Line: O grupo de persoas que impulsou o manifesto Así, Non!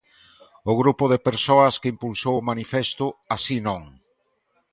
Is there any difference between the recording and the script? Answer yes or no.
no